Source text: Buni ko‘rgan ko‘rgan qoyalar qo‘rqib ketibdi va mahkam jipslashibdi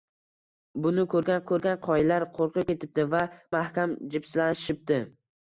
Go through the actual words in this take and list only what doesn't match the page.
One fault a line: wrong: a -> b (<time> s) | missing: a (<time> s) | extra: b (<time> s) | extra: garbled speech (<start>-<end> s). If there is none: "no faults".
no faults